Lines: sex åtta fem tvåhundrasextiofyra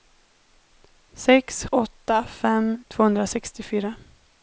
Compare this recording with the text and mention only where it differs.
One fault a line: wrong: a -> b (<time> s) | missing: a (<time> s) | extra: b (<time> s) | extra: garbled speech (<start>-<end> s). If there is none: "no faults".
no faults